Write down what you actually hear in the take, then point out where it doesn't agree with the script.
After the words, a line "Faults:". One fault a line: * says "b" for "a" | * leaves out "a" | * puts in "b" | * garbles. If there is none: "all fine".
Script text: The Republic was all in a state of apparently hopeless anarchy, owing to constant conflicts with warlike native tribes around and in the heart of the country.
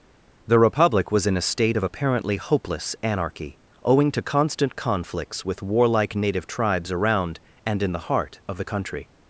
The Republic was in a state of apparently hopeless anarchy, owing to constant conflicts with warlike native tribes around and in the heart of the country.
Faults:
* leaves out "all"